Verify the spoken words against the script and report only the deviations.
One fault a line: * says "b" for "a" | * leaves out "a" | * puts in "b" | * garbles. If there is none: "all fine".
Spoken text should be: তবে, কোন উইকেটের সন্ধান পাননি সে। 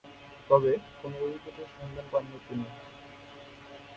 * says "তিনি" for "সে"